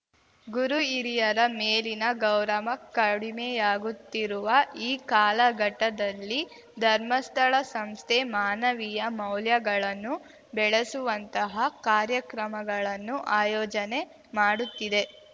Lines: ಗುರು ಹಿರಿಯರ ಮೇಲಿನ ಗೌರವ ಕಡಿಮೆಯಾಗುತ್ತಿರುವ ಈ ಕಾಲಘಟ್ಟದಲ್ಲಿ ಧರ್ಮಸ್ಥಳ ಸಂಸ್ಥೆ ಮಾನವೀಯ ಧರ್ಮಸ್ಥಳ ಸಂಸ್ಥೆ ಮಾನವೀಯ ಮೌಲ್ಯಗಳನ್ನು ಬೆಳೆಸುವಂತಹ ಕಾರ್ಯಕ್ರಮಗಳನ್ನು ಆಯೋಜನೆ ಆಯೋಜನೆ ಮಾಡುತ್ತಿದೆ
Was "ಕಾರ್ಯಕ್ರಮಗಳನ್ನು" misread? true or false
false